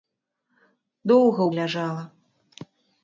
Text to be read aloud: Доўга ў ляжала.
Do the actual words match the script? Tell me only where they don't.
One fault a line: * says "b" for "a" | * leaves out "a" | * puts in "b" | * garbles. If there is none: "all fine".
all fine